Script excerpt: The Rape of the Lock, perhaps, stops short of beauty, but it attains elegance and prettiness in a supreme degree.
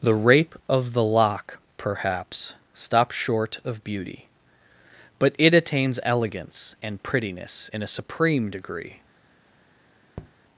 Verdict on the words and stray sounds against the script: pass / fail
fail